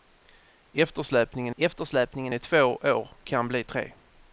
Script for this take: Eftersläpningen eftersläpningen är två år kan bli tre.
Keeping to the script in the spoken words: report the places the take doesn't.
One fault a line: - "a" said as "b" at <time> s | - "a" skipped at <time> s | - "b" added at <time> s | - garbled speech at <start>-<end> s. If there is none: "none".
none